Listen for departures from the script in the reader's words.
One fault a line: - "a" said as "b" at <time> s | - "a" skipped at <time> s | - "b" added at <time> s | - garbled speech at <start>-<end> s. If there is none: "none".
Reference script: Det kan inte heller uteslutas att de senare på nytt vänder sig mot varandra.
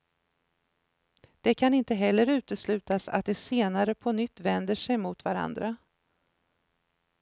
none